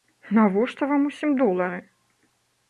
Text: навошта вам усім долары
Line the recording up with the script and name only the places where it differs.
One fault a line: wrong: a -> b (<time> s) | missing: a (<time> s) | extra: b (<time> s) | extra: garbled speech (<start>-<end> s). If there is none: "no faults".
no faults